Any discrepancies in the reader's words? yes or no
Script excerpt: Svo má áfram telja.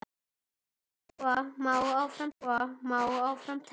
yes